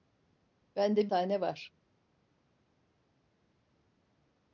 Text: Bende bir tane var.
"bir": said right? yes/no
no